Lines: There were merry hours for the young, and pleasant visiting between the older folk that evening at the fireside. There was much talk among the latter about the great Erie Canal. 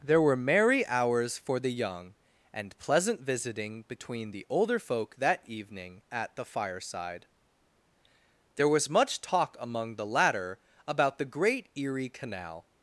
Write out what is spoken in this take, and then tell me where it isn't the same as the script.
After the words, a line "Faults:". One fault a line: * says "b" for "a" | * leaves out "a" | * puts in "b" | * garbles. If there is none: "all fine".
There were merry hours for the young, and pleasant visiting between the older folk that evening at the fireside. There was much talk among the latter about the great Erie Canal.
Faults:
all fine